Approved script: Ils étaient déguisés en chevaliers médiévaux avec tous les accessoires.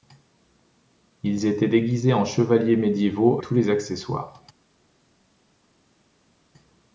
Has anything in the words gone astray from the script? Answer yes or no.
yes